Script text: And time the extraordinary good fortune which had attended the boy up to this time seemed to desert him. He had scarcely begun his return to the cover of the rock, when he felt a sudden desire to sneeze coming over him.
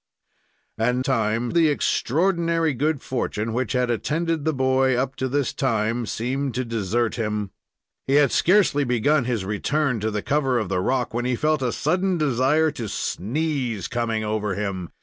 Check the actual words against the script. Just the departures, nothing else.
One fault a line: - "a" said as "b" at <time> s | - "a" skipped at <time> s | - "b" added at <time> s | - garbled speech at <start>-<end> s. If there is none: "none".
none